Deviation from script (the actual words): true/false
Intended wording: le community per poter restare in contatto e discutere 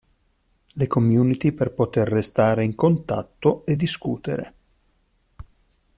false